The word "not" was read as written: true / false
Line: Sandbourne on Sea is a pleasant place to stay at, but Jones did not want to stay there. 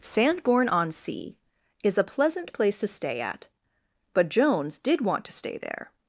false